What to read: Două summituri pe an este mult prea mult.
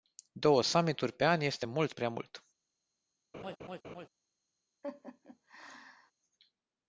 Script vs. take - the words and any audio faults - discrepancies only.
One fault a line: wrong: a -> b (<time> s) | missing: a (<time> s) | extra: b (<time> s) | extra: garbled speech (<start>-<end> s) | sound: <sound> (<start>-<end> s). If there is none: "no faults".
sound: laugh (3.3-4.1 s)
sound: laugh (4.8-6.1 s)